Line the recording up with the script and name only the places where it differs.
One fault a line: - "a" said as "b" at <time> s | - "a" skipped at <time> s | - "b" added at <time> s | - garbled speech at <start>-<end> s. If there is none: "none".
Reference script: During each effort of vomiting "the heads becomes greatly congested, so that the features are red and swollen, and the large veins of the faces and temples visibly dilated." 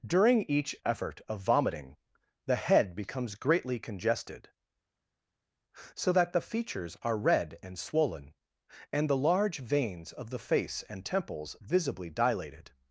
- "heads" said as "head" at 2.5 s
- "faces" said as "face" at 10.4 s